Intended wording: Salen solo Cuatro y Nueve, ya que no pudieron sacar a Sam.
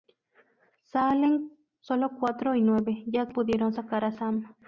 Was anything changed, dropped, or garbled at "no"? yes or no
yes